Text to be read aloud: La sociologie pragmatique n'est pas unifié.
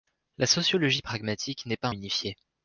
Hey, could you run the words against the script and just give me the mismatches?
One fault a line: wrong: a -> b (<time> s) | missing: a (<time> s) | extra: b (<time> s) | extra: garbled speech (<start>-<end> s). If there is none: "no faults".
no faults